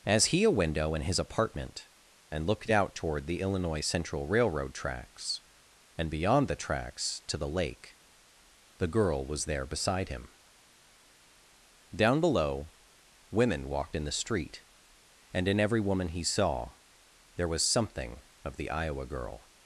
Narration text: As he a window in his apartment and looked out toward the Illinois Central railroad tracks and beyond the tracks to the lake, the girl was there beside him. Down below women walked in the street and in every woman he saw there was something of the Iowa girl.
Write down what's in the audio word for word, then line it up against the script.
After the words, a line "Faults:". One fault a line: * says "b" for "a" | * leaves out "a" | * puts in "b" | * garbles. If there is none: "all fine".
As he a window in his apartment and looked out toward the Illinois Central railroad tracks and beyond the tracks to the lake, the girl was there beside him. Down below women walked in the street and in every woman he saw there was something of the Iowa girl.
Faults:
all fine